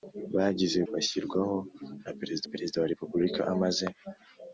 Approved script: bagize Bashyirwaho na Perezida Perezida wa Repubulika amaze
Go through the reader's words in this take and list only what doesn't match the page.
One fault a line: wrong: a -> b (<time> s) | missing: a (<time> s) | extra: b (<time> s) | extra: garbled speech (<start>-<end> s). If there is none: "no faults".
no faults